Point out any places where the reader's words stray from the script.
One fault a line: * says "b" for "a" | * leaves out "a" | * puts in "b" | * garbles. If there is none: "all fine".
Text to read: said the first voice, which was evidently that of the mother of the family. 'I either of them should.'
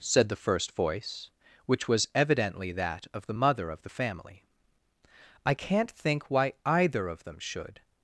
* puts in "can't think why"